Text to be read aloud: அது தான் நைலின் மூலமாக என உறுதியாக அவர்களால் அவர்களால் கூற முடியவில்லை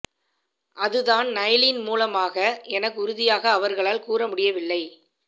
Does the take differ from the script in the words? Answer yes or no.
yes